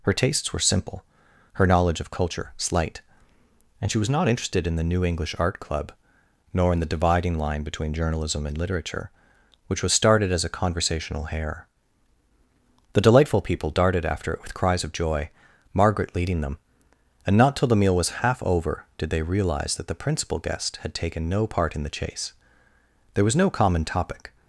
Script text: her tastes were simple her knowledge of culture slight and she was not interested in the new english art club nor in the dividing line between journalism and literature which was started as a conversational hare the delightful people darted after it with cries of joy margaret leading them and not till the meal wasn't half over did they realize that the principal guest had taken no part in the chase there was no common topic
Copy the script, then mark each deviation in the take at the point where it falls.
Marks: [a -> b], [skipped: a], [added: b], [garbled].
her tastes were simple her knowledge of culture slight and she was not interested in the new english art club nor in the dividing line between journalism and literature which was started as a conversational hare the delightful people darted after it with cries of joy margaret leading them and not till the meal [wasn't -> was] half over did they realize that the principal guest had taken no part in the chase there was no common topic